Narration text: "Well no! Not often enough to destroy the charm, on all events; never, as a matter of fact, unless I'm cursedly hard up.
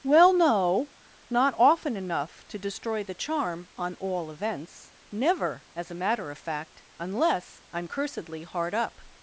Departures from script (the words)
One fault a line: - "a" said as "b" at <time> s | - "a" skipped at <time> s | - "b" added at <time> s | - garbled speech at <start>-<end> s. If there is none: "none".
none